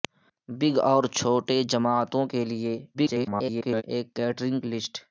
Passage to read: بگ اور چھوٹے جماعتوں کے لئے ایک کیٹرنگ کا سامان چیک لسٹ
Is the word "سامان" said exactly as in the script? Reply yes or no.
no